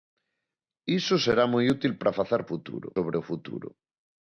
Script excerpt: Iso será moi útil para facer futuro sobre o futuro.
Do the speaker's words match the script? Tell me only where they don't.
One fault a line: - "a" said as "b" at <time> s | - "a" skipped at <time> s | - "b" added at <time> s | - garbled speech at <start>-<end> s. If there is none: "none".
none